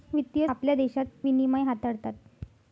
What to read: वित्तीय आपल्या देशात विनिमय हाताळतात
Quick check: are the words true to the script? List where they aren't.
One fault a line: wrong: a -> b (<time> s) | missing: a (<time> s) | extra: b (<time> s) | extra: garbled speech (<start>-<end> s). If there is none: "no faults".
no faults